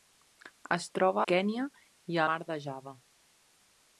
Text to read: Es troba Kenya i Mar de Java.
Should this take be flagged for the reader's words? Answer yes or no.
no